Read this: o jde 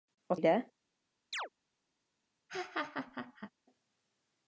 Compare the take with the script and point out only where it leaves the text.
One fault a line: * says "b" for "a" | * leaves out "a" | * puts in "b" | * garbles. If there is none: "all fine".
all fine